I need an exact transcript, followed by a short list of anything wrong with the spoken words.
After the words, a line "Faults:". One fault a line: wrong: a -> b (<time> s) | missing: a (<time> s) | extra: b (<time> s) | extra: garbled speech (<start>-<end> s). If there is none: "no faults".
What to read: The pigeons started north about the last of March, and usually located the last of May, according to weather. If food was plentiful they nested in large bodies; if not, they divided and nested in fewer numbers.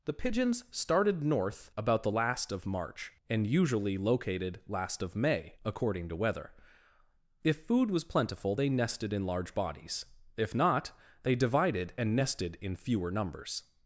The pigeons started north about the last of March, and usually located last of May, according to weather. If food was plentiful they nested in large bodies; if not, they divided and nested in fewer numbers.
Faults:
missing: the (4.6 s)